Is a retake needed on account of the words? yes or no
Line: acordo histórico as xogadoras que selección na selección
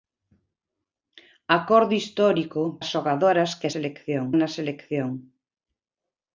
no